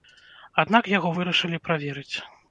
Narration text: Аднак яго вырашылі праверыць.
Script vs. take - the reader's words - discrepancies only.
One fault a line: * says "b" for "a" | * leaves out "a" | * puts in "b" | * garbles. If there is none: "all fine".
all fine